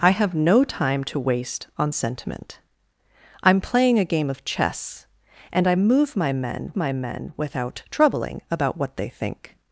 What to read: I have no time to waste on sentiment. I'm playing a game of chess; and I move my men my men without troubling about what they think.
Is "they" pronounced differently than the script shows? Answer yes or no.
no